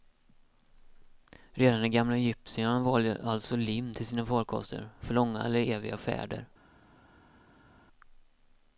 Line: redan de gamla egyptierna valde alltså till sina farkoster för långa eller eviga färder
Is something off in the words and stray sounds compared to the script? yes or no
yes